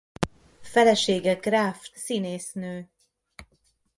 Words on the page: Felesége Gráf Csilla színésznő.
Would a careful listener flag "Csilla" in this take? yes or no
yes